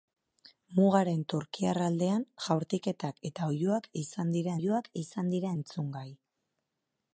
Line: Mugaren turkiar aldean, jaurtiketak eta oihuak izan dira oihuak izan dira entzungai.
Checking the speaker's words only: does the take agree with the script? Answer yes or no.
yes